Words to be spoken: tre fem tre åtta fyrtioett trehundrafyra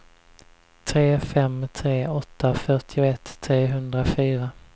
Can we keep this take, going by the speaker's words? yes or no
yes